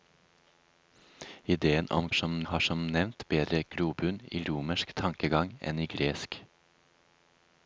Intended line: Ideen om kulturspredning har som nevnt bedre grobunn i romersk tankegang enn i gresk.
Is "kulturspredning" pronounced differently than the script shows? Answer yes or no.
yes